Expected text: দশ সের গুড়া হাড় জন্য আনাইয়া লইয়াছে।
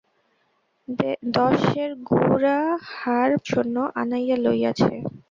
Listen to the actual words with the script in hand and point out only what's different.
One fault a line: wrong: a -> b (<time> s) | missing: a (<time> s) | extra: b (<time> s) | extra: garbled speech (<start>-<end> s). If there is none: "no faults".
no faults